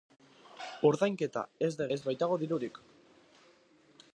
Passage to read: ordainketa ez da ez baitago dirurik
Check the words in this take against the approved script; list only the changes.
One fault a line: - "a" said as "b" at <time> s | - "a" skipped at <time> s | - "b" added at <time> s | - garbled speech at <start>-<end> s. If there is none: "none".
none